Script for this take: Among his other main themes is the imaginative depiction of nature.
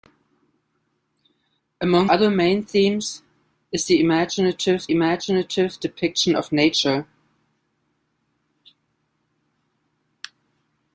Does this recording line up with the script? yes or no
no